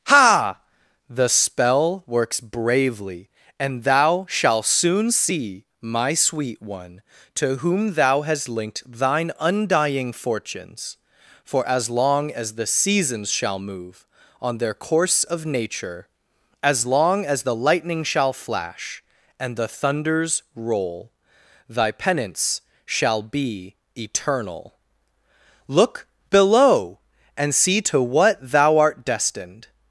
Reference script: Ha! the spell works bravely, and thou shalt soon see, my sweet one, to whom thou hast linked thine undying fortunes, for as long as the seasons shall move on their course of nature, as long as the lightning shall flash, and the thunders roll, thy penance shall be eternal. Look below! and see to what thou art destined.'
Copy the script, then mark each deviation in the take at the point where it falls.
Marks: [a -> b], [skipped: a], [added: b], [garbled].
Ha! the spell works bravely, and thou shalt soon see, my sweet one, to whom thou hast linked thine undying fortunes, for as long as the seasons shall move on their course of nature, as long as the lightning shall flash, and the thunders roll, thy penance shall be eternal. Look below! and see to what thou art destined.'